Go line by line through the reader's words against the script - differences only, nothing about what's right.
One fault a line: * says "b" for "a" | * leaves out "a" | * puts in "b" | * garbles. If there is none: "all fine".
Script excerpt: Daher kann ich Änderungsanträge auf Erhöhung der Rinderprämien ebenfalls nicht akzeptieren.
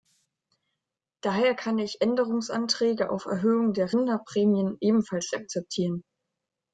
* leaves out "nicht"